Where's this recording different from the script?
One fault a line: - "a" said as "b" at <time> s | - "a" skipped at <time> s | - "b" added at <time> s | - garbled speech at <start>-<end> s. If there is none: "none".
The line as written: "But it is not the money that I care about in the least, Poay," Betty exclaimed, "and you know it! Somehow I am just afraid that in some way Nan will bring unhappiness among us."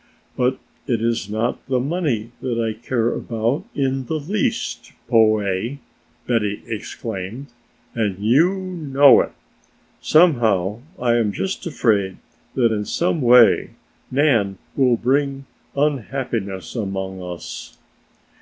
none